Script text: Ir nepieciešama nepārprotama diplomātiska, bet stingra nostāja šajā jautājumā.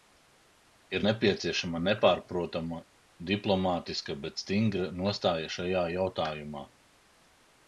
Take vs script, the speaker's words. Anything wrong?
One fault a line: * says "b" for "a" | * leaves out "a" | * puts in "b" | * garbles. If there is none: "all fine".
all fine